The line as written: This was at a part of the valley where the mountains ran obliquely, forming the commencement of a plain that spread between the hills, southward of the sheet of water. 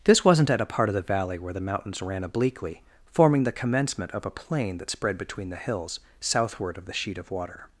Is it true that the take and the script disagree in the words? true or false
true